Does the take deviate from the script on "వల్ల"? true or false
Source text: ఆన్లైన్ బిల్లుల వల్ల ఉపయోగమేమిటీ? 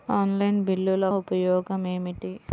true